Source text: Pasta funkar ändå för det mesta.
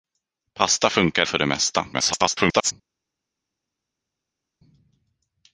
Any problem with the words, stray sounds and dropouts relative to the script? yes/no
yes